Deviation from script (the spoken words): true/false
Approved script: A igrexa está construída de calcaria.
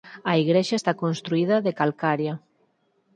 false